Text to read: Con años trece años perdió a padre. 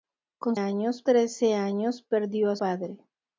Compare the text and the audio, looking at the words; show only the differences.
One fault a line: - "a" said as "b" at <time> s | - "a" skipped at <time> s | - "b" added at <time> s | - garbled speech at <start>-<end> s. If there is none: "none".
none